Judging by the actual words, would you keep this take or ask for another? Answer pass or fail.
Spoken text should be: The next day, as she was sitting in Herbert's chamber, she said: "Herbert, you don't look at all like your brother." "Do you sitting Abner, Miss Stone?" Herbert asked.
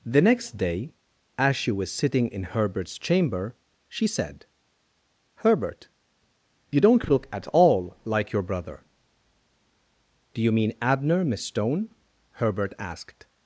fail